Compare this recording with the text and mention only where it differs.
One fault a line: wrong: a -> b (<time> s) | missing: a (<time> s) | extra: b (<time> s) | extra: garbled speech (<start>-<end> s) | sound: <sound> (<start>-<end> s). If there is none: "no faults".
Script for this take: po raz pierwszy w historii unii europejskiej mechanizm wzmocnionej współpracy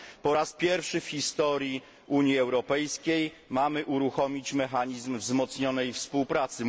extra: mamy uruchomić (3.5 s)